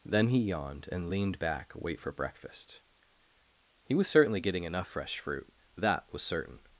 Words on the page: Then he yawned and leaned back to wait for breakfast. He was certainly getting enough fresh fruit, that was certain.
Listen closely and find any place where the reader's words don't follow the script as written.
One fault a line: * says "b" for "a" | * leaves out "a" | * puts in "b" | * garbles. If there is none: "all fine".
* leaves out "to"